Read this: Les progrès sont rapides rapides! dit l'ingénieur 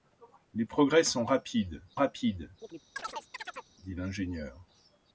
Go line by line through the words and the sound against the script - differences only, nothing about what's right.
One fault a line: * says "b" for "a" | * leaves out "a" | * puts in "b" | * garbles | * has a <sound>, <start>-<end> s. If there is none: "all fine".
* has a chirp, 2.6-3.7 s